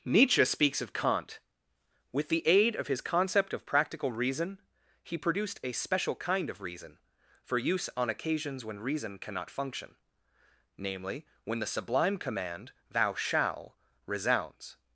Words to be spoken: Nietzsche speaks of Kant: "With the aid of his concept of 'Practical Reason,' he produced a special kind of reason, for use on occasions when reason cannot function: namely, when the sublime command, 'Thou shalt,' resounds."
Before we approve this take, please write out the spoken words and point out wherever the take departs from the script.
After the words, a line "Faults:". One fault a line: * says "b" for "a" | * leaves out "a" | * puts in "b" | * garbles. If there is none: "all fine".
Nietzsche speaks of Kant: "With the aid of his concept of 'Practical Reason,' he produced a special kind of reason, for use on occasions when reason cannot function: namely, when the sublime command, 'Thou shall,' resounds."
Faults:
* says "shall" for "shalt"